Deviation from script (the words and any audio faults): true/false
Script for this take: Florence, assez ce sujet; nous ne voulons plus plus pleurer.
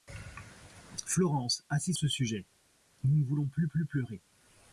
false